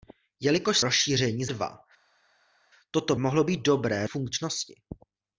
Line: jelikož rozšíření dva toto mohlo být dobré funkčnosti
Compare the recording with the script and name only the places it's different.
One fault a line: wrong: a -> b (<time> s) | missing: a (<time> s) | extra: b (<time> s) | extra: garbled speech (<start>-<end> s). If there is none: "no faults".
no faults